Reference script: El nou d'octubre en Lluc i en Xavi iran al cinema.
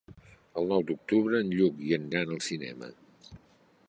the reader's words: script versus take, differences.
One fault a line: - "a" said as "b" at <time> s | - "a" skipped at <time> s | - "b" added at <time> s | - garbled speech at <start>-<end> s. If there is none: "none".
- "Xavi" skipped at 2.1 s